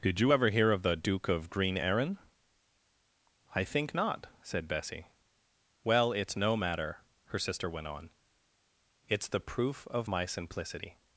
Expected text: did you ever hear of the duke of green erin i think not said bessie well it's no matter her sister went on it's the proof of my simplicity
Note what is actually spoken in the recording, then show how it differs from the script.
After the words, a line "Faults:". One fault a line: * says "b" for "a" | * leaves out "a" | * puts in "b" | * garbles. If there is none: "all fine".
did you ever hear of the duke of green erin i think not said bessie well it's no matter her sister went on it's the proof of my simplicity
Faults:
all fine